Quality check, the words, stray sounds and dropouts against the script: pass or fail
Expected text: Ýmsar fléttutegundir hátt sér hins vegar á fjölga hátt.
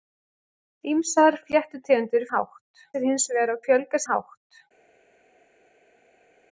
pass